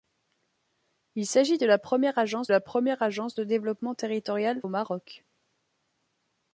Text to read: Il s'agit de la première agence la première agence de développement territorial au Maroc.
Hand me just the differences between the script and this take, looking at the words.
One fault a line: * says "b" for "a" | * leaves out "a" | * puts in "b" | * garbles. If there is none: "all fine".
all fine